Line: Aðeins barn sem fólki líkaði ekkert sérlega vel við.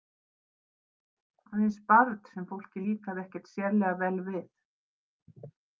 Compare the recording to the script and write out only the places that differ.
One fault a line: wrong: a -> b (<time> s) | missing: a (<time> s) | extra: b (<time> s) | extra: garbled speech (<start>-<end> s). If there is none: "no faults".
no faults